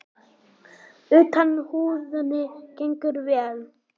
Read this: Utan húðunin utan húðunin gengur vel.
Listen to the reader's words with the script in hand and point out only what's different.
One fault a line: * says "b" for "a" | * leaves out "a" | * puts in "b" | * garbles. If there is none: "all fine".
* leaves out "utan húðunin"